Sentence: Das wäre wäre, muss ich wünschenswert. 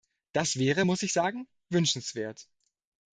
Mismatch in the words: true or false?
true